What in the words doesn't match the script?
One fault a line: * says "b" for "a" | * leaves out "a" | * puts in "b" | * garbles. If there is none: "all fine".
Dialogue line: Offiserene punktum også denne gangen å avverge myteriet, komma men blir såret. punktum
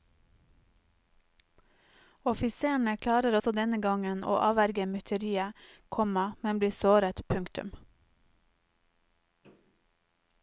* says "klarer" for "punktum"